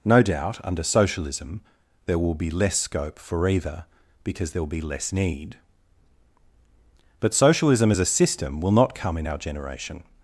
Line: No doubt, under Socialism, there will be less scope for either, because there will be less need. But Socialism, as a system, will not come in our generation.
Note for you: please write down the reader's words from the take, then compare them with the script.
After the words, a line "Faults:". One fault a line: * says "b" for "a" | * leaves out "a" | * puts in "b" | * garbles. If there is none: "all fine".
No doubt, under Socialism, there will be less scope for either, because there will be less need. But Socialism, as a system, will not come in our generation.
Faults:
all fine